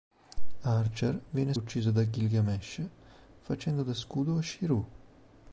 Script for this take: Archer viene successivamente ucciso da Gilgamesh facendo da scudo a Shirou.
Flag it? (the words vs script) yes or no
yes